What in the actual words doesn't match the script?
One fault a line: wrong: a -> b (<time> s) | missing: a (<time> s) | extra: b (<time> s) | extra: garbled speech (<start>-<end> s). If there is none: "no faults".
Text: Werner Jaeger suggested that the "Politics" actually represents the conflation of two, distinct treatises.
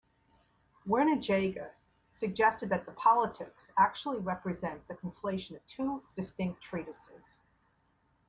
no faults